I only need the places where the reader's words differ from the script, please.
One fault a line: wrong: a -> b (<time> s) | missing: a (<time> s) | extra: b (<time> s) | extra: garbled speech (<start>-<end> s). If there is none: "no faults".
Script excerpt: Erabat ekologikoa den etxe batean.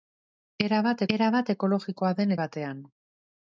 extra: erabat (1.2 s)
missing: etxe (2.3 s)